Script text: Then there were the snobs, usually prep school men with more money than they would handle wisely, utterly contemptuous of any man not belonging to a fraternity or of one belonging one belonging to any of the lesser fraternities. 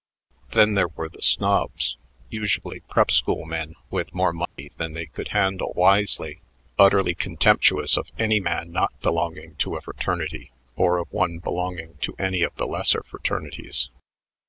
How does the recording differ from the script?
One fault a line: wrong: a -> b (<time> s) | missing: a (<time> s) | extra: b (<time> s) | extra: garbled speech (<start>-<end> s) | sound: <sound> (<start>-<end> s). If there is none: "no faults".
sound: dropout (4.5-4.6 s)
wrong: would -> could (5.0 s)
missing: one belonging (12.0 s)